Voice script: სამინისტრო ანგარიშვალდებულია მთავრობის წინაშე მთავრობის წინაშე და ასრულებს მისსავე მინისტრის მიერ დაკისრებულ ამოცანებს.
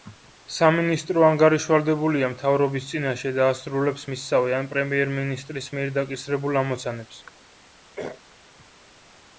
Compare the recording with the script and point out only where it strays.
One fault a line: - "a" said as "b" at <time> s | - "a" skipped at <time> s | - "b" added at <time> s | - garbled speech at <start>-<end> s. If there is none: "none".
- "მთავრობის წინაშე" skipped at 3.3 s
- "ან პრემიერ" added at 4.6 s